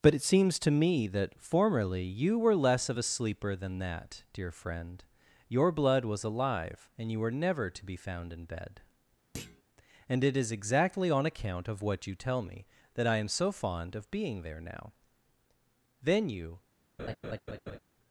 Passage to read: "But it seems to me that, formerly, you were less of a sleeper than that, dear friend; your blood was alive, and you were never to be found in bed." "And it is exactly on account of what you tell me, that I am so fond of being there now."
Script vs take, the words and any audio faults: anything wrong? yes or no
yes